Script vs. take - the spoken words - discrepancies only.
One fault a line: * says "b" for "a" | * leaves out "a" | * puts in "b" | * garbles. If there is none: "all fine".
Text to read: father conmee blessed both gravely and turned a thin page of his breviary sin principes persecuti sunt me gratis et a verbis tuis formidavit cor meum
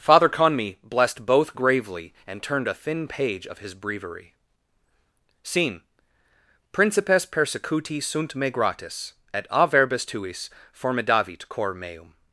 * says "scene" for "sin"